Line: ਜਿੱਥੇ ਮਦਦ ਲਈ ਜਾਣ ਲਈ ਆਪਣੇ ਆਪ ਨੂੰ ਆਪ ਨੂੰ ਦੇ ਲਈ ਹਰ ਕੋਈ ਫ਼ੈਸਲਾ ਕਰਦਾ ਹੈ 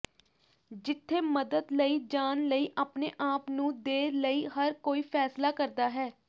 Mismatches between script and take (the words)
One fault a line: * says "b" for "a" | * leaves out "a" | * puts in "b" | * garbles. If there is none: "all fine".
* leaves out "ਆਪ ਨੂੰ"